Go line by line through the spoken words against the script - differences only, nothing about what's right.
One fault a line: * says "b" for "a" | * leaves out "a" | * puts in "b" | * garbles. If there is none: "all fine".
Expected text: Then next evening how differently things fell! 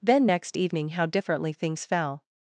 all fine